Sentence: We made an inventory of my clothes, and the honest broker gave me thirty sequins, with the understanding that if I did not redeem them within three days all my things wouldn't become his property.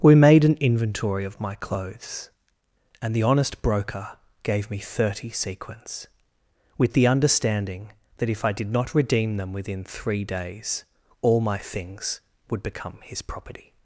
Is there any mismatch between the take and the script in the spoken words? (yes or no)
yes